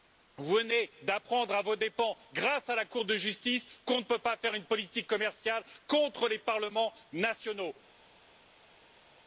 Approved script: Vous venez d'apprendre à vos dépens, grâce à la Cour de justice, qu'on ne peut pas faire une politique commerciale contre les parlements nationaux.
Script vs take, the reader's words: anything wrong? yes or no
no